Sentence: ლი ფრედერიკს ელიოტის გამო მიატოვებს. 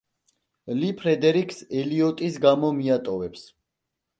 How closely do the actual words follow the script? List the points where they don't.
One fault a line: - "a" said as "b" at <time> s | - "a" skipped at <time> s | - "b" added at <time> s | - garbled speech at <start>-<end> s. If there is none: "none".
none